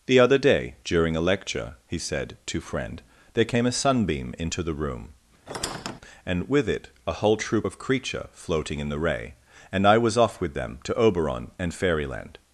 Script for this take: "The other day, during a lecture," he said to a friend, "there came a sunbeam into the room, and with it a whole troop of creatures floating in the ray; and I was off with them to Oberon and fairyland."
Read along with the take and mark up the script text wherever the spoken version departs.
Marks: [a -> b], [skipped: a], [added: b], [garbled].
"The other day, during a lecture," he said to [skipped: a] friend, "there came a sunbeam into the room, and with it a whole troop of [creatures -> creature] floating in the ray; and I was off with them to Oberon and fairyland."